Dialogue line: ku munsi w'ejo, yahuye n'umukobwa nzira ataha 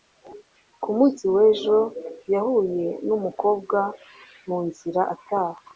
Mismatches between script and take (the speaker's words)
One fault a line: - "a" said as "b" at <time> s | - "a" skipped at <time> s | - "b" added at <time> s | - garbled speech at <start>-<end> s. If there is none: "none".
- "mu" added at 4.5 s